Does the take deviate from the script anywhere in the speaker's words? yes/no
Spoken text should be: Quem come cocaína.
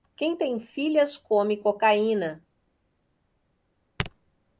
yes